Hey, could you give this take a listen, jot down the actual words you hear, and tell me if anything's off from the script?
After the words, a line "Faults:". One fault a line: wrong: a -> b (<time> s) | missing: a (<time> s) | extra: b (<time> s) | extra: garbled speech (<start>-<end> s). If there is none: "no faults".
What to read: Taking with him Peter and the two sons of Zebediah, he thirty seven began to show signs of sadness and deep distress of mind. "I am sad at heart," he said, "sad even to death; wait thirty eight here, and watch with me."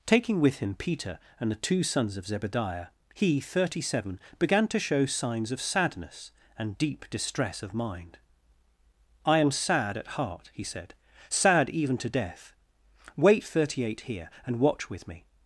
Taking with him Peter and the two sons of Zebediah, he thirty seven began to show signs of sadness and deep distress of mind. "I am sad at heart," he said, "sad even to death; wait thirty eight here, and watch with me."
Faults:
no faults